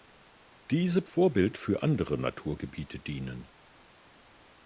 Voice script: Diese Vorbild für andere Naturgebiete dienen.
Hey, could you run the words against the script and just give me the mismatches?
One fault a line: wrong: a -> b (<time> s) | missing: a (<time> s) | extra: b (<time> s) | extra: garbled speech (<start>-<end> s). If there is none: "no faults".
no faults